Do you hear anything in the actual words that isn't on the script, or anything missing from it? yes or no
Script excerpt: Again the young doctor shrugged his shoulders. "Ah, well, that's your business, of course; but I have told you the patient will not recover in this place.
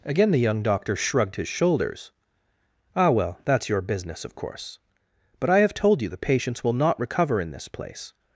yes